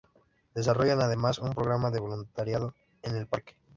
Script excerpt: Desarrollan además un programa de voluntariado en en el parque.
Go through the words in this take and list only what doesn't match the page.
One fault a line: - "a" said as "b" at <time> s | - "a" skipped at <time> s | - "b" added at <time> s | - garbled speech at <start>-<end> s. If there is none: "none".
- "en" skipped at 3.1 s